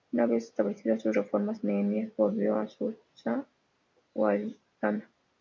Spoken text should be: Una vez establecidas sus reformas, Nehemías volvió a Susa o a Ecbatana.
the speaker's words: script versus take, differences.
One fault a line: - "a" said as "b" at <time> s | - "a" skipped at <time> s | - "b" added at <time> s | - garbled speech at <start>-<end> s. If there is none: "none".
none